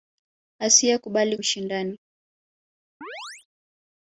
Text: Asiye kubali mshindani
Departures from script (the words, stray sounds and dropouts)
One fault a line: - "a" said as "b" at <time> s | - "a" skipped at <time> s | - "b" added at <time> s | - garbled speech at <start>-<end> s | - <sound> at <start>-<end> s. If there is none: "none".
- chirp at 3.0-3.5 s